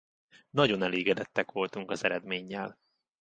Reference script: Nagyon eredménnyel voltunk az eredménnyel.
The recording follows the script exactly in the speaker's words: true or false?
false